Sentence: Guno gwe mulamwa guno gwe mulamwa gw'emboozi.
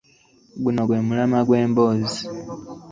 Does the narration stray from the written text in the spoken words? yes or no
yes